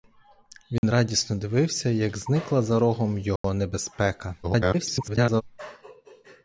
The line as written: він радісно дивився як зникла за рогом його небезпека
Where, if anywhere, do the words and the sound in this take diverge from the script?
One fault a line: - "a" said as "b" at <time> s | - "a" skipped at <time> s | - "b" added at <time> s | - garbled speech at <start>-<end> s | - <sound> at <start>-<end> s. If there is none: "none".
- dropout at 0.8-0.8 s
- dropout at 3.4-3.4 s
- garbled speech at 4.4-5.4 s